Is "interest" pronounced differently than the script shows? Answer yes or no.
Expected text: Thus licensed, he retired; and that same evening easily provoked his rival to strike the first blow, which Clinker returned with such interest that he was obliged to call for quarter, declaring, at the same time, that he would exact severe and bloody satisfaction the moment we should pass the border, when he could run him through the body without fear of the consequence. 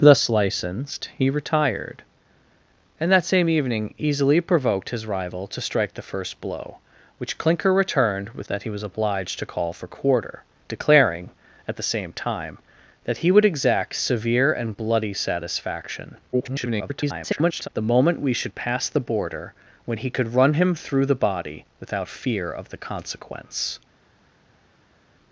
yes